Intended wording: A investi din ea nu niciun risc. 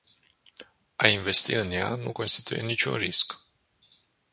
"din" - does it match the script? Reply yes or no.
no